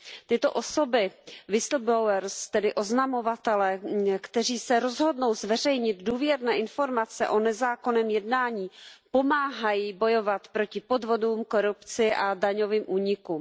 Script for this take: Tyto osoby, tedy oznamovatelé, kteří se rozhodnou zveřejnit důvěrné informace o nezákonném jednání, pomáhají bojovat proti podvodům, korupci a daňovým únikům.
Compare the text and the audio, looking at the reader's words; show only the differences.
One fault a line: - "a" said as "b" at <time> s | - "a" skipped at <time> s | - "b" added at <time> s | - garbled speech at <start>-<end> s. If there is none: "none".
none